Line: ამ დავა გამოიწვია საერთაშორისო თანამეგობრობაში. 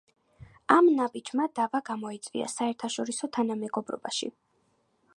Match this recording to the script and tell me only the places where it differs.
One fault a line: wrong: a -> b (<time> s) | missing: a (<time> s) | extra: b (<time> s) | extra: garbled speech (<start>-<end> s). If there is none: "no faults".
extra: ნაბიჯმა (1.0 s)